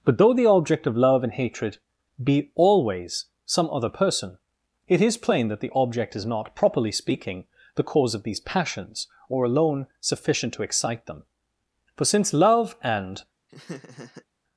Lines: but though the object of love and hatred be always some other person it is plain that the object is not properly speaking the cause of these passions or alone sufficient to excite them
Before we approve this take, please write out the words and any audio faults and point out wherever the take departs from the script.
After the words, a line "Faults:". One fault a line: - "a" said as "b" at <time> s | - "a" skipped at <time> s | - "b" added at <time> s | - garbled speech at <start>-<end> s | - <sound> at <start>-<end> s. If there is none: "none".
but though the object of love and hatred be always some other person it is plain that the object is not properly speaking the cause of these passions or alone sufficient to excite them for since love and
Faults:
- "for since love and" added at 12.0 s
- laugh at 13.5-14.3 s